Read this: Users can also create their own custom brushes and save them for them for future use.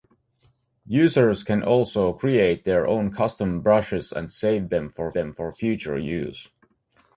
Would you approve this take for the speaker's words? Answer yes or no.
yes